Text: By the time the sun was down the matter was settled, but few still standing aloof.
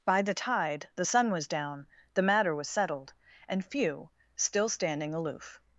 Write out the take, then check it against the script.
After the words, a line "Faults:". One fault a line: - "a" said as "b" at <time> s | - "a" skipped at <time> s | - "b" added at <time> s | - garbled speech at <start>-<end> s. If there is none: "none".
By the tide the sun was down the matter was settled, and few still standing aloof.
Faults:
- "time" said as "tide" at 0.3 s
- "but" said as "and" at 3.5 s